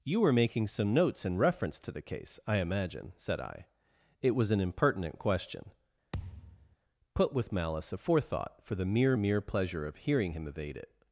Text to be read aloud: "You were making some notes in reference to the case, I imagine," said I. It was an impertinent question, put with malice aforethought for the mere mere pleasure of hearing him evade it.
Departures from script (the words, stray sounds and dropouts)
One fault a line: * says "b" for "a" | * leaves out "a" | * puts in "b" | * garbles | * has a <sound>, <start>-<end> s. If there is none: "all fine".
* has a thud, 6.1-6.8 s